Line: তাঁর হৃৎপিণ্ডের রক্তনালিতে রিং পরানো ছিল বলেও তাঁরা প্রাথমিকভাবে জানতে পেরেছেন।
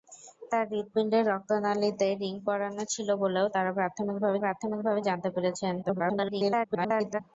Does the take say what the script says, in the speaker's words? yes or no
no